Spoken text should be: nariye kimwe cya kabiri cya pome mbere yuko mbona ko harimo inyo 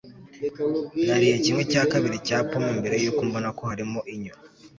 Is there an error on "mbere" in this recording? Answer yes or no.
no